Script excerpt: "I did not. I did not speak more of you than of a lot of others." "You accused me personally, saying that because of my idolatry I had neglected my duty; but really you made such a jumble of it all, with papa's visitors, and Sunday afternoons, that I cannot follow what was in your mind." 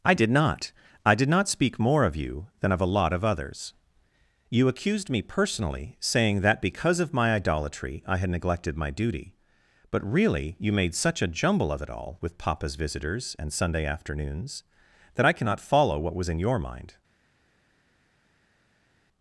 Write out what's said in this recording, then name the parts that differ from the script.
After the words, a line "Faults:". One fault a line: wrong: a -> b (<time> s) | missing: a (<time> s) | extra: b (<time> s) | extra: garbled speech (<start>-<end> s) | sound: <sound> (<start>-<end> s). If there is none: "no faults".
"I did not. I did not speak more of you than of a lot of others." "You accused me personally, saying that because of my idolatry I had neglected my duty; but really you made such a jumble of it all, with papa's visitors, and Sunday afternoons, that I cannot follow what was in your mind."
Faults:
no faults